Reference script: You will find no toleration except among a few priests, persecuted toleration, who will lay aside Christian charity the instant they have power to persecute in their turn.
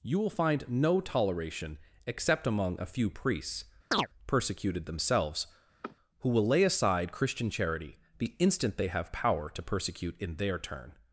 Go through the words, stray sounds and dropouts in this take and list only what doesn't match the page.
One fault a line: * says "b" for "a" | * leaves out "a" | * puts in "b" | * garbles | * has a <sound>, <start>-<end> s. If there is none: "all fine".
* has a chirp, 3.9-4.1 s
* says "themselves" for "toleration"
* has a sniff, 5.8-6.0 s